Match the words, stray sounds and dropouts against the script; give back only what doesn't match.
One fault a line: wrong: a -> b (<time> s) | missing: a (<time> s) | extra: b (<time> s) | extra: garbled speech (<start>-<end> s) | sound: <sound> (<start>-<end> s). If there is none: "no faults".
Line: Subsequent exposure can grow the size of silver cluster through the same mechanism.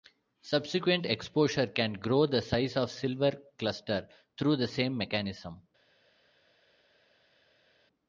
no faults